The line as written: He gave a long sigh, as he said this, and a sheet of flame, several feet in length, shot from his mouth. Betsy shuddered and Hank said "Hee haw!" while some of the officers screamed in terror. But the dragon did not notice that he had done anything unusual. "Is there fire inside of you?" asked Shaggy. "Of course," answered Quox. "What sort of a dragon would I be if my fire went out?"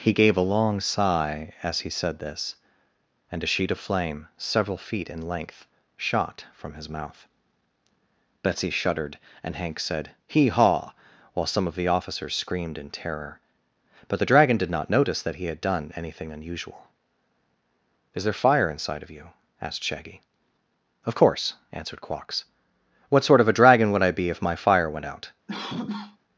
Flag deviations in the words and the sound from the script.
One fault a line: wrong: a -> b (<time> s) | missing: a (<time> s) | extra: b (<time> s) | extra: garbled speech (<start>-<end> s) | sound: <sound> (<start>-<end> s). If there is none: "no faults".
sound: cough (25.5-26.2 s)